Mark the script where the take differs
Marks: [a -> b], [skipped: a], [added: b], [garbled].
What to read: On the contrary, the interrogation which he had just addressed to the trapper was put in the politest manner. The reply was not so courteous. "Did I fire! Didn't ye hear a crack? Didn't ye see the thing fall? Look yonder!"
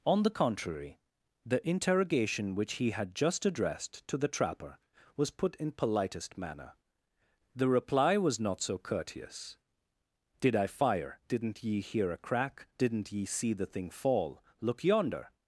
On the contrary, the interrogation which he had just addressed to the trapper was put in [skipped: the] politest manner. The reply was not so courteous. "Did I fire! Didn't ye hear a crack? Didn't ye see the thing fall? Look yonder!"